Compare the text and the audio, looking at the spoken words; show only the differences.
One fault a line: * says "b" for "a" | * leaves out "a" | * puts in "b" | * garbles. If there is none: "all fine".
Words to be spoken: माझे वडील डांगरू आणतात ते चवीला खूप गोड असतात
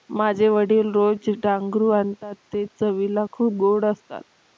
* puts in "रोज"